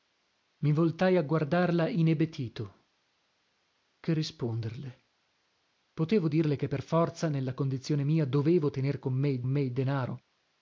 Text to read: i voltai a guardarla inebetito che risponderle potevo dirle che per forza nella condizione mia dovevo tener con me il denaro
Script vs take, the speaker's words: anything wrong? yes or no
yes